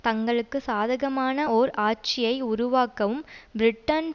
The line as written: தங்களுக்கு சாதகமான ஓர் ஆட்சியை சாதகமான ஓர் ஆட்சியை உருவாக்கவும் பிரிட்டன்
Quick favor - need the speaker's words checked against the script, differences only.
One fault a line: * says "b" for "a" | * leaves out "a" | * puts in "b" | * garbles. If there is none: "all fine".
* leaves out "சாதகமான ஓர் ஆட்சியை"